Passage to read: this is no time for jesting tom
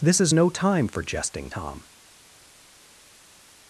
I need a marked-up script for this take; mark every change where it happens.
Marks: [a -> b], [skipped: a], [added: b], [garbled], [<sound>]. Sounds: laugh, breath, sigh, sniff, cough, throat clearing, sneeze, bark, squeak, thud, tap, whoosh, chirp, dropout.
this is no time for jesting tom